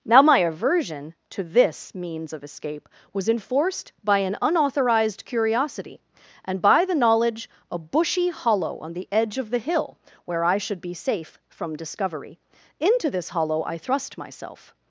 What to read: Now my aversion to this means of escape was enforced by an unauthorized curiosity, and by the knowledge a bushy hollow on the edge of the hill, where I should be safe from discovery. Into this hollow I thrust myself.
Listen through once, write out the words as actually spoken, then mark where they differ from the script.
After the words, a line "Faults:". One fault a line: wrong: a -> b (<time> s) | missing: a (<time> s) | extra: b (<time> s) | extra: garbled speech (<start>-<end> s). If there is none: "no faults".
Now my aversion to this means of escape was enforced by an unauthorized curiosity, and by the knowledge a bushy hollow on the edge of the hill, where I should be safe from discovery. Into this hollow I thrust myself.
Faults:
no faults